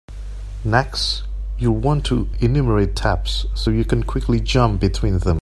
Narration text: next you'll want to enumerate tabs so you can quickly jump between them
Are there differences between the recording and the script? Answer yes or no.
no